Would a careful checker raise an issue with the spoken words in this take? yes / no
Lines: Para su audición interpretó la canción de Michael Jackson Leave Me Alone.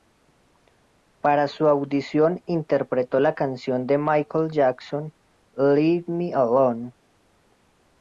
no